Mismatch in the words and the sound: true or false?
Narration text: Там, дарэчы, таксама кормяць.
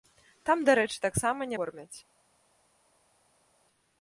false